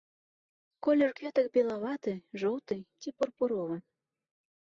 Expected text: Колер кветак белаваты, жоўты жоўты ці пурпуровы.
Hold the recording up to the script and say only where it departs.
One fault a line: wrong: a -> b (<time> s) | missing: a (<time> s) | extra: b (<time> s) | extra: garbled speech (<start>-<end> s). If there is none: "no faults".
missing: жоўты (2.8 s)